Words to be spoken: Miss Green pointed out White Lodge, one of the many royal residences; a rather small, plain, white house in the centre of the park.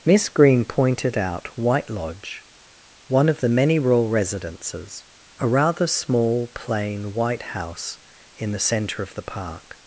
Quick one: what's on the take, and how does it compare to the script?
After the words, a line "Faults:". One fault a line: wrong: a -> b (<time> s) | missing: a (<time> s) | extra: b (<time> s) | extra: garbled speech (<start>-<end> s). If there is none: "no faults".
Miss Green pointed out White Lodge, one of the many royal residences; a rather small, plain, white house in the centre of the park.
Faults:
no faults